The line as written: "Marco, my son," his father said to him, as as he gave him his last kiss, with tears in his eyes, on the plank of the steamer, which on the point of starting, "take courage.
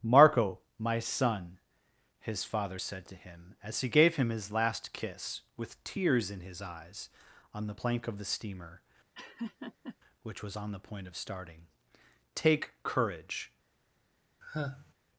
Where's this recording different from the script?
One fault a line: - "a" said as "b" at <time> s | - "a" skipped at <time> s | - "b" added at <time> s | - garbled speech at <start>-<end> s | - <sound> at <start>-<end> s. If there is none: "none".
- "as" skipped at 3.8 s
- laugh at 9.1-10.0 s
- "was" added at 10.4 s
- sigh at 14.4-14.9 s